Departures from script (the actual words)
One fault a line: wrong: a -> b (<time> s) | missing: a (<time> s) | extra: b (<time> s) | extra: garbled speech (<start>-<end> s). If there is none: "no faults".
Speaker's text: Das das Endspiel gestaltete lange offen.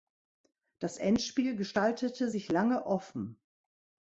missing: das (1.0 s)
extra: sich (2.3 s)